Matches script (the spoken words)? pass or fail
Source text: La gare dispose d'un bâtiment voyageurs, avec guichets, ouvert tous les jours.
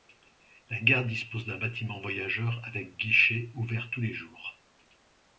pass